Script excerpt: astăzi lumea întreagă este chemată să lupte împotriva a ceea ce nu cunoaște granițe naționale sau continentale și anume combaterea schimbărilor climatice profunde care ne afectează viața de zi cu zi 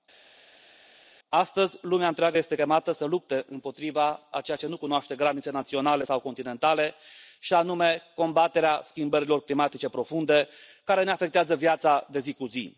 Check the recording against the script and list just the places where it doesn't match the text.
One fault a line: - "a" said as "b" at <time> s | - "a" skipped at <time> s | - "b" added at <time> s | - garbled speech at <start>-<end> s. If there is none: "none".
none